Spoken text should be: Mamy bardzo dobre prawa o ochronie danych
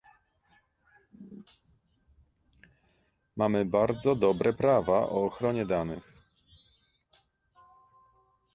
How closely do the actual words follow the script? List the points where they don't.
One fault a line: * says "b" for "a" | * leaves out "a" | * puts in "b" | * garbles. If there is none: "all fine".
all fine